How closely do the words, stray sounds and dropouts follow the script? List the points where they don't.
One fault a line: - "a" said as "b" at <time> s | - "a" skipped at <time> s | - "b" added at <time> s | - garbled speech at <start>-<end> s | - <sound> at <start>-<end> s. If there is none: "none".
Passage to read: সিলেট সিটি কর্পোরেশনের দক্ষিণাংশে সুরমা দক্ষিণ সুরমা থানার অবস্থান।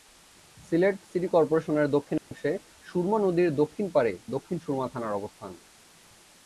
- dropout at 2.2-2.3 s
- "নদীর দক্ষিণ পাড়ে" added at 3.2 s